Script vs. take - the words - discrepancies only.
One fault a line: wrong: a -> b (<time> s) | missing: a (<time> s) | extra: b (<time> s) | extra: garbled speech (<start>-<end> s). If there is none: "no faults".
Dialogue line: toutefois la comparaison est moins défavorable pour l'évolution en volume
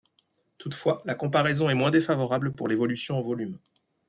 no faults